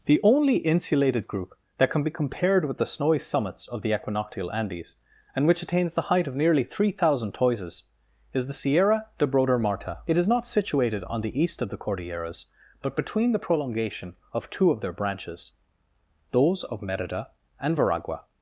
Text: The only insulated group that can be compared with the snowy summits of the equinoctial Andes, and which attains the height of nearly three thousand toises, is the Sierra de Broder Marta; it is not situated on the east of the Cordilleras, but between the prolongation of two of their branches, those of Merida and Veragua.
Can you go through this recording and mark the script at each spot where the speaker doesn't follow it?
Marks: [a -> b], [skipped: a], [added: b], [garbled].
The only insulated group that can be compared with the snowy summits of the equinoctial Andes, and which attains the height of nearly three thousand toises, is the Sierra de Broder Marta; it is not situated on the east of the Cordilleras, but between the prolongation of two of their branches, those of Merida and Veragua.